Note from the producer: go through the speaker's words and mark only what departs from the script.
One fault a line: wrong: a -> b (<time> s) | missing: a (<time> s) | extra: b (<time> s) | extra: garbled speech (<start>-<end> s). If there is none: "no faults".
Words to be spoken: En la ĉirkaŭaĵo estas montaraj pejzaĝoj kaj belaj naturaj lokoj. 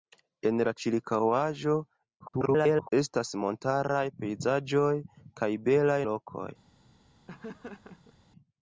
extra: garbled speech (2.2-2.9 s)
missing: naturaj (6.0 s)